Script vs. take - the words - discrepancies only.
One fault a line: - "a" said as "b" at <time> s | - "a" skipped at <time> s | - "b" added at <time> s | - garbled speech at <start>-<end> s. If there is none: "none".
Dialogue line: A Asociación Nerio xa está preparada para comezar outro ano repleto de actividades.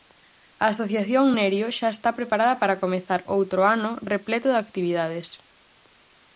none